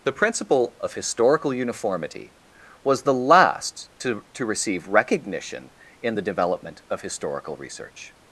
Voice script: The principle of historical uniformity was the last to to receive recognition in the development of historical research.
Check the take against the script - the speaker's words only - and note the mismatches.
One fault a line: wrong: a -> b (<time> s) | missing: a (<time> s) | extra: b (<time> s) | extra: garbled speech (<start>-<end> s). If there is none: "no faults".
no faults